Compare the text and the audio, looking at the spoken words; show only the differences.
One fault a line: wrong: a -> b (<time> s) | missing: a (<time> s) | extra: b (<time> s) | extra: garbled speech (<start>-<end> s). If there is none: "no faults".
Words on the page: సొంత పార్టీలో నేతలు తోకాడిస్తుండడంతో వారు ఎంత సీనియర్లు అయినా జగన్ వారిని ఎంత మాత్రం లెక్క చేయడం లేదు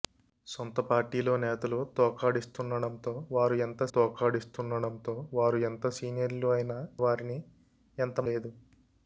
extra: తోకాడిస్తుండడంతో వారు ఎంత (3.9 s)
missing: జగన్ (6.8 s)
missing: మాత్రం లెక్క చేయడం (8.2 s)